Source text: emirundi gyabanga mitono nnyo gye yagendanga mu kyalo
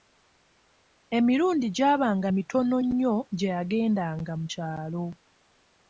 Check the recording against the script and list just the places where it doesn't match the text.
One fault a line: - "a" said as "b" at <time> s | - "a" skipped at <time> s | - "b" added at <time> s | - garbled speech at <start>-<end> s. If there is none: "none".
none